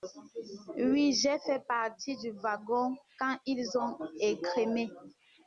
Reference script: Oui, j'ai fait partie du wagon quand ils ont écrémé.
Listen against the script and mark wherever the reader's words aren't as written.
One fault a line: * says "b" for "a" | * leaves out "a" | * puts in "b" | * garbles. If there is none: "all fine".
all fine